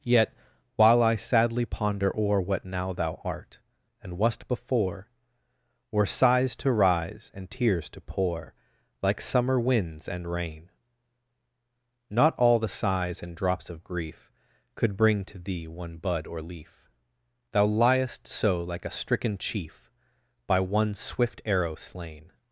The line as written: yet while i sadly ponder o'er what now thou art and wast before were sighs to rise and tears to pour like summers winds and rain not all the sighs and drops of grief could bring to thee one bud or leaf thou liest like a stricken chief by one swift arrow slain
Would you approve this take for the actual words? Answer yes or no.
no